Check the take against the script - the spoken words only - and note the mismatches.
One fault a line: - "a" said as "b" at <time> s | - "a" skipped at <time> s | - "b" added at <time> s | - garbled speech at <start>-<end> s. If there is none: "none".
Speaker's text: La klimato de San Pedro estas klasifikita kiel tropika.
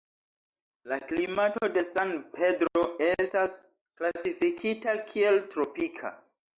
none